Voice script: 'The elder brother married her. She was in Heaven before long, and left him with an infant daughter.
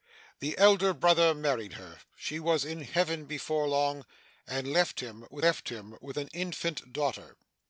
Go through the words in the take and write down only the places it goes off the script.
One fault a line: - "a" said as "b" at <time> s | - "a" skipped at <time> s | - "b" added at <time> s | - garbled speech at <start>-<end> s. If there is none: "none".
- "left him with" added at 5.4 s